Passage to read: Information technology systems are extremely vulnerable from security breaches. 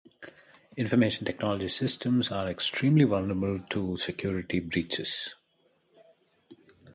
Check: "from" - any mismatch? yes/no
yes